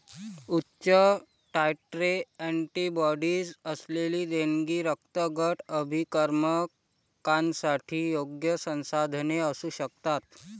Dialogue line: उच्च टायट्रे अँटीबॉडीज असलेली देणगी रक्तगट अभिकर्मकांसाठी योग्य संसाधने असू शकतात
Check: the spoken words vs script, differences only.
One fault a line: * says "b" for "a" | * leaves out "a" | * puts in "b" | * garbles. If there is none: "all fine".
all fine